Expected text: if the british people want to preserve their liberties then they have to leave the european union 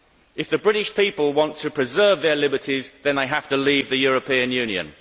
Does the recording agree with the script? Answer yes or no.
yes